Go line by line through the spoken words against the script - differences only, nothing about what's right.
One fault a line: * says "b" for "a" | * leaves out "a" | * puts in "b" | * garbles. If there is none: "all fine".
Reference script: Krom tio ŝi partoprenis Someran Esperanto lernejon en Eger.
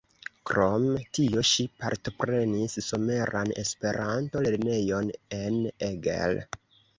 all fine